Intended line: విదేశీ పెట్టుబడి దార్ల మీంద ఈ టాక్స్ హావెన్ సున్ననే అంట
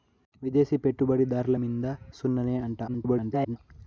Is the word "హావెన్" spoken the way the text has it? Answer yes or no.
no